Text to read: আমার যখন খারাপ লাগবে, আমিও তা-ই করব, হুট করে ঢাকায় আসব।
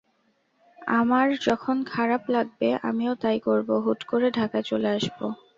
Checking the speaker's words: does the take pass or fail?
fail